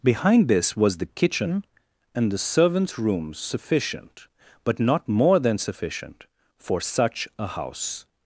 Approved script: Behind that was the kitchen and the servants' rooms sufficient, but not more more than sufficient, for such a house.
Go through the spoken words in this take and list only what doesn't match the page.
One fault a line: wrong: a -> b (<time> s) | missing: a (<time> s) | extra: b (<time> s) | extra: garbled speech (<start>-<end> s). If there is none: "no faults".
wrong: that -> this (0.5 s)
missing: more (5.4 s)